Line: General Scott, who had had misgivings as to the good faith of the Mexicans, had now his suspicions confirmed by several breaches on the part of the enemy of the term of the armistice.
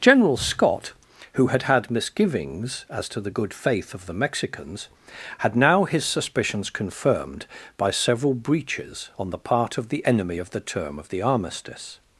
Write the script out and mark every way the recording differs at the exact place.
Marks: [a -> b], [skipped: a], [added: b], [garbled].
General Scott, who had had misgivings as to the good faith of the Mexicans, had now his suspicions confirmed by several breaches on the part of the enemy of the term of the armistice.